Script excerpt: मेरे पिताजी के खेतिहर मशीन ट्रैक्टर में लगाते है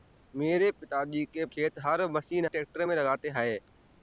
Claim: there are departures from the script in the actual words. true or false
false